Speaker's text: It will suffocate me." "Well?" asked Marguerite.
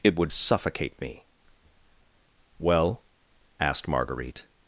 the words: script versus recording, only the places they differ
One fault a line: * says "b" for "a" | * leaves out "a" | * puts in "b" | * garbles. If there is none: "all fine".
* says "would" for "will"